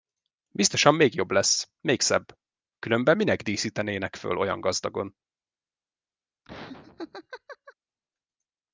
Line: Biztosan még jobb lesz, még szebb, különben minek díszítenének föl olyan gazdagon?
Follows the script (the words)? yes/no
yes